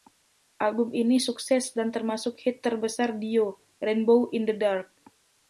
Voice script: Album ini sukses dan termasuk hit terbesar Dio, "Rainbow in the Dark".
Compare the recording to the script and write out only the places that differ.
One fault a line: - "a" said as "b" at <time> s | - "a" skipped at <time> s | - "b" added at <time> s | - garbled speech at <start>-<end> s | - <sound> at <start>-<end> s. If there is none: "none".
none